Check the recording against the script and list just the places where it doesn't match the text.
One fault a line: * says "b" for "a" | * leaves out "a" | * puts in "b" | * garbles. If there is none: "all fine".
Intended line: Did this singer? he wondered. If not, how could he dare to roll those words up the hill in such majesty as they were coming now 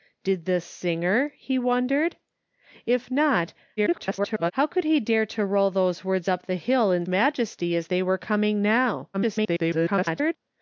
* garbles
* leaves out "such"
* garbles